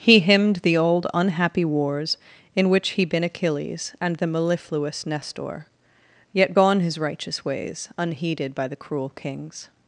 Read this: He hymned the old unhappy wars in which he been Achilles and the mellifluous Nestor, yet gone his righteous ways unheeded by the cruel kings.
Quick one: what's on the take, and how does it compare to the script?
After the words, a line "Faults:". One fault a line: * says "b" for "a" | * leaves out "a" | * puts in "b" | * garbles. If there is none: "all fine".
He hymned the old unhappy wars in which he been Achilles and the mellifluous Nestor, yet gone his righteous ways unheeded by the cruel kings.
Faults:
all fine